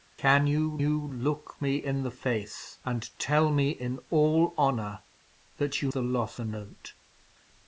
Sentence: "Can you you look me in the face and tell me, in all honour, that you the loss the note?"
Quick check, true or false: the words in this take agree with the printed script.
true